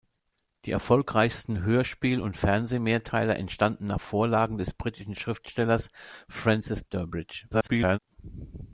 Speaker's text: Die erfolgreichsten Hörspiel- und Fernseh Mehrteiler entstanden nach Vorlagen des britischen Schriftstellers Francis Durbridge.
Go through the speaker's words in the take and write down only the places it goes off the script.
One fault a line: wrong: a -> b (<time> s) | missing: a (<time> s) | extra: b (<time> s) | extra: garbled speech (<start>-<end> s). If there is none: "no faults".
extra: garbled speech (7.5-8.0 s)